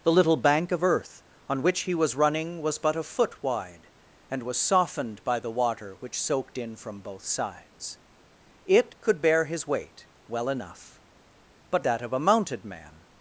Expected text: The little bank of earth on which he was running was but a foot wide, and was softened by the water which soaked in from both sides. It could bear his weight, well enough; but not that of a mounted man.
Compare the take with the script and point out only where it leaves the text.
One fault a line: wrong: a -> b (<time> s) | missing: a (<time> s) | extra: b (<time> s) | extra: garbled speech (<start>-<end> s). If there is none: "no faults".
missing: not (11.8 s)